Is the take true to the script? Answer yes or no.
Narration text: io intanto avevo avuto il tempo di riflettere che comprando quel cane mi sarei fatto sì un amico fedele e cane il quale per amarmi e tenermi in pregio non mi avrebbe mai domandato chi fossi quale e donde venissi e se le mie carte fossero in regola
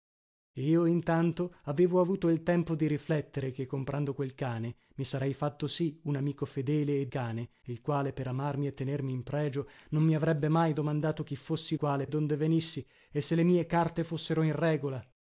yes